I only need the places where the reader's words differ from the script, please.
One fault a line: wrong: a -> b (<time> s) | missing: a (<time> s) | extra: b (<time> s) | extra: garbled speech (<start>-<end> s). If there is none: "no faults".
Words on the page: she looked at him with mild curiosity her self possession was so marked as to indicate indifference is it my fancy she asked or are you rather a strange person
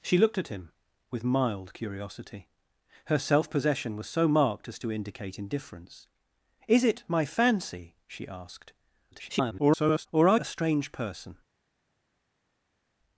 extra: garbled speech (9.1-10.1 s)
missing: you rather (10.4 s)